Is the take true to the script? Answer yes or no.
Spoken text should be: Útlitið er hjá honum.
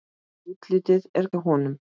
yes